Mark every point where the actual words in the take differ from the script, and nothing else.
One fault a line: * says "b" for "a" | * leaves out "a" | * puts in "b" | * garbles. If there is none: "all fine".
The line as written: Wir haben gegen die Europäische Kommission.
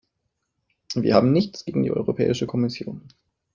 * puts in "nichts"